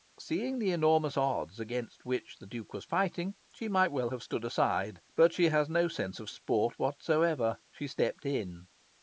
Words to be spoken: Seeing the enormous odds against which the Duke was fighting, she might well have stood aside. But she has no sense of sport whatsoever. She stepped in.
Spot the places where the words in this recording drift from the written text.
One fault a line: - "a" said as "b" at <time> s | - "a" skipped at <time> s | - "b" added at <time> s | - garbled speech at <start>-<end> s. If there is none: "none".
none